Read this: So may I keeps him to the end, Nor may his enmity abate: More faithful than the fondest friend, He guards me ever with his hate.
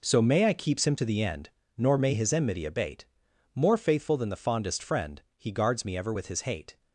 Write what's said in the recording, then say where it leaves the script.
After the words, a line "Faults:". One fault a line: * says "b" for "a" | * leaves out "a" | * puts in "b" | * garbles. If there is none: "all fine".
So may I keeps him to the end, Nor may his enmity abate: More faithful than the fondest friend, He guards me ever with his hate.
Faults:
all fine